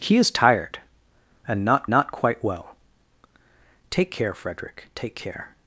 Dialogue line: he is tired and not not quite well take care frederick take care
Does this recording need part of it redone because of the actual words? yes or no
no